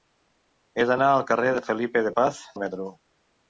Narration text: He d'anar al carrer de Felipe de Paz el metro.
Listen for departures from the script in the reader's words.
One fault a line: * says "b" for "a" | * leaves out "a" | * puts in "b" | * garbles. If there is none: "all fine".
all fine